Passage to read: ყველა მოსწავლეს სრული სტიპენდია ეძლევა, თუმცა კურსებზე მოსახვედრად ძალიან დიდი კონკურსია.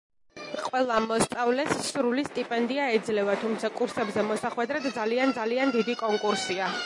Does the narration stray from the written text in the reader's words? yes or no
yes